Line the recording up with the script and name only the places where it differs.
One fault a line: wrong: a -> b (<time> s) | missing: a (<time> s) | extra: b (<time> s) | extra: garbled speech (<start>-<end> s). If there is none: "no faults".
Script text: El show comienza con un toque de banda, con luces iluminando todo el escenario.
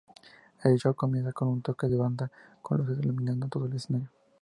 no faults